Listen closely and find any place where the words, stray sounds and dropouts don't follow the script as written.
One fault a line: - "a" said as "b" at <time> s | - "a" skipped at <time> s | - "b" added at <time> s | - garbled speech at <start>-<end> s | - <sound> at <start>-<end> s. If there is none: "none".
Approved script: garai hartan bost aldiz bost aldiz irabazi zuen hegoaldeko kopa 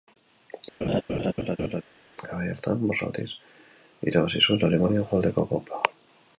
- laugh at 0.8-1.8 s
- "bost aldiz" skipped at 3.3 s
- "alemania" added at 4.7 s